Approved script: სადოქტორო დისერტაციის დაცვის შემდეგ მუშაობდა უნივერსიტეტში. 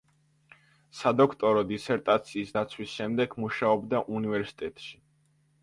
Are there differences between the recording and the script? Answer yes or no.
no